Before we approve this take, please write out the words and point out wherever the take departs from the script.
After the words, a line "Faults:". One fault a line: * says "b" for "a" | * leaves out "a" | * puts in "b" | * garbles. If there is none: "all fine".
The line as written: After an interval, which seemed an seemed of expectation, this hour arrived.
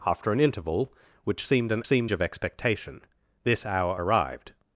After an interval, which seemed an seemed of expectation, this hour arrived.
Faults:
all fine